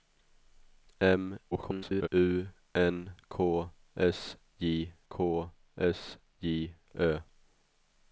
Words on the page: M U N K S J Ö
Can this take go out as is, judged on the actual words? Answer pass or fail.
fail